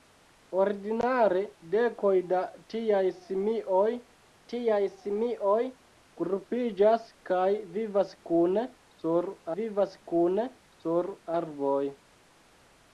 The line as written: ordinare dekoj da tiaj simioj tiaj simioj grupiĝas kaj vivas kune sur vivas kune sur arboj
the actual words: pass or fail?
pass